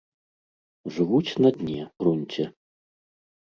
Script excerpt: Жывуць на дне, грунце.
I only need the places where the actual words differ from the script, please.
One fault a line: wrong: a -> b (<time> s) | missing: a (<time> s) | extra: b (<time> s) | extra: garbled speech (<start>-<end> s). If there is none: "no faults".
no faults